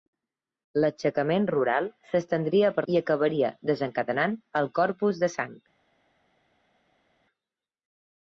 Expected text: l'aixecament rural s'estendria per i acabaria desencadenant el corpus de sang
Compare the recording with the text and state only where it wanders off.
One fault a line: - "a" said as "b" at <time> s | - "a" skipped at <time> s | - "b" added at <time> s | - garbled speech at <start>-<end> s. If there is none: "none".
none